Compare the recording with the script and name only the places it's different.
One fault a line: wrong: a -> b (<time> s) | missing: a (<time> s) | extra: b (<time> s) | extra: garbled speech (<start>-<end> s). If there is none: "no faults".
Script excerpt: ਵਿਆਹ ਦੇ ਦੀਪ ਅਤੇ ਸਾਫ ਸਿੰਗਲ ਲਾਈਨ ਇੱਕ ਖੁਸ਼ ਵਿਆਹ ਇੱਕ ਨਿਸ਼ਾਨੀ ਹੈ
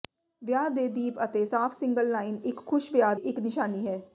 no faults